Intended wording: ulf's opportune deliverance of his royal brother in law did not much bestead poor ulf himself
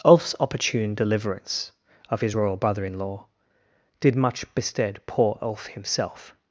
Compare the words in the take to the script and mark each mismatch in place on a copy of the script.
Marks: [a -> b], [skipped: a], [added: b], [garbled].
ulf's opportune deliverance of his royal brother in law did [skipped: not] much bestead poor ulf himself